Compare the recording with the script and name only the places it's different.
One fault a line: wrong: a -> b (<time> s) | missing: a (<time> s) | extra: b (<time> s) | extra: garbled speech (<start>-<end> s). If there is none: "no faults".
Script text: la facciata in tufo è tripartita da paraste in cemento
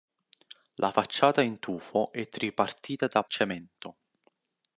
missing: paraste in (3.2 s)